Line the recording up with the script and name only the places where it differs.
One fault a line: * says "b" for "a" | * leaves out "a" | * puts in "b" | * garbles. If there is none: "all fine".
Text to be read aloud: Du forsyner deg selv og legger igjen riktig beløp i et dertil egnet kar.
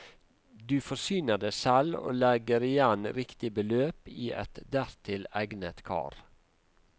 all fine